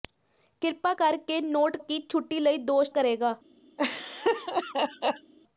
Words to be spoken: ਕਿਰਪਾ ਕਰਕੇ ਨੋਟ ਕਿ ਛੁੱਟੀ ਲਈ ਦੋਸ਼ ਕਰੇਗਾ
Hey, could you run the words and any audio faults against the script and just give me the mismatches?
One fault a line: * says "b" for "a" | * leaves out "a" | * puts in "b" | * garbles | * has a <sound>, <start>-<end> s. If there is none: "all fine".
* has a laugh, 3.8-5.3 s